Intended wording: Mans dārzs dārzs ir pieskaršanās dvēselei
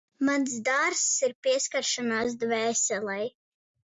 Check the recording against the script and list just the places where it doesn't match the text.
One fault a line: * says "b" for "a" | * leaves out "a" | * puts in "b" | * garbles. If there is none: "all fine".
* leaves out "dārzs"